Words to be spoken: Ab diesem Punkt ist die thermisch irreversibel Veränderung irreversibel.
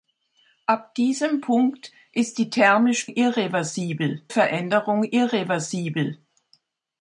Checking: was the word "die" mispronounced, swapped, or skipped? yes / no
no